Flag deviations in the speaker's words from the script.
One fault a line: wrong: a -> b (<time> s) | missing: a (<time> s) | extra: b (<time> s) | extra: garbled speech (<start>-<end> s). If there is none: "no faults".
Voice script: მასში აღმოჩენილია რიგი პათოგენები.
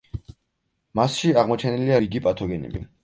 no faults